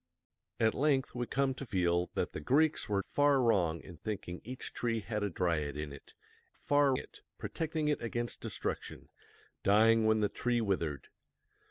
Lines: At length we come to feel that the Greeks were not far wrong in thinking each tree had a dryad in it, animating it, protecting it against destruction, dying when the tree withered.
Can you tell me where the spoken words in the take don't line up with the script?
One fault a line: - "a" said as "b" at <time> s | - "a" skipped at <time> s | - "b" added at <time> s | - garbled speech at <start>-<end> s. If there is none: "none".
- "not" skipped at 3.0 s
- "animating" said as "far" at 6.5 s